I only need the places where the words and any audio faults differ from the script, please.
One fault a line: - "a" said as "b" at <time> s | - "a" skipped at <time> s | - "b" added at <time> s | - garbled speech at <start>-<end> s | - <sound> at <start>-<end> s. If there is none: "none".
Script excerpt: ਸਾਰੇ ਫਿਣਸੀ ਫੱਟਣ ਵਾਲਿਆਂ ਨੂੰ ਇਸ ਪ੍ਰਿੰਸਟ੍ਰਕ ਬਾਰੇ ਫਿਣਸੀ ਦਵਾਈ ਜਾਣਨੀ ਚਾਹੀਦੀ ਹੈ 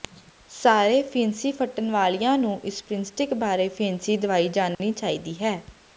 - dropout at 4.7-4.8 s